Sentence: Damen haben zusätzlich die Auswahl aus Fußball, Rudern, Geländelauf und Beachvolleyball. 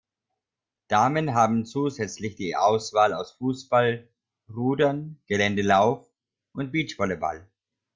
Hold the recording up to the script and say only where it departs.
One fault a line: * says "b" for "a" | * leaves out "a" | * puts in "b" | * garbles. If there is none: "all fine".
all fine